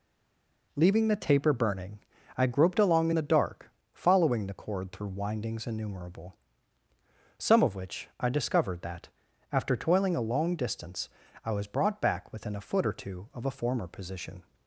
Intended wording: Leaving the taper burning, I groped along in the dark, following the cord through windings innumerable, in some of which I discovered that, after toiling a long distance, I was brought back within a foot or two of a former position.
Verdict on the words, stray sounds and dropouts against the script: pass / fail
fail